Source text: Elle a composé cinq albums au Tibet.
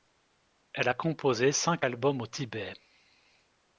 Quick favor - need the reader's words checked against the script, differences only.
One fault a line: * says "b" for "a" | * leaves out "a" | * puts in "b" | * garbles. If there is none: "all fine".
all fine